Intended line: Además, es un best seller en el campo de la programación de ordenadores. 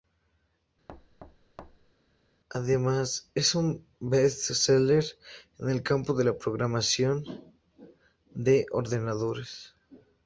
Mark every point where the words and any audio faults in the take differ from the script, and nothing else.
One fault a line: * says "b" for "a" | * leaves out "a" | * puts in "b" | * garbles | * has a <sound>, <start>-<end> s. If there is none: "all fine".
* has a thud, 0.9-1.9 s